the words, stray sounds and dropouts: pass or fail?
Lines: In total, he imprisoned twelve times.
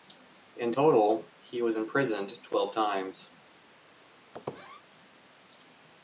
fail